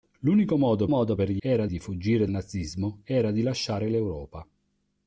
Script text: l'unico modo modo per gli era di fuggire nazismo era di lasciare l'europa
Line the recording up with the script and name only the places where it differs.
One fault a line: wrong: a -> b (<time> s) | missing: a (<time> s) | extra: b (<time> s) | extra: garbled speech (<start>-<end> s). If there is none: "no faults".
no faults